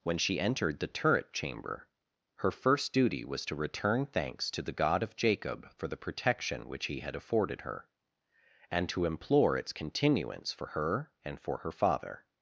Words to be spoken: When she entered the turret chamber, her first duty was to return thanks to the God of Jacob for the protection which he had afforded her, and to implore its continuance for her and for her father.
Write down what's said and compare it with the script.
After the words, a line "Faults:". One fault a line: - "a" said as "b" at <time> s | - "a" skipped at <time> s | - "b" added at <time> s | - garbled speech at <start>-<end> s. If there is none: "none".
When she entered the turret chamber, her first duty was to return thanks to the God of Jacob for the protection which he had afforded her, and to implore its continuance for her and for her father.
Faults:
none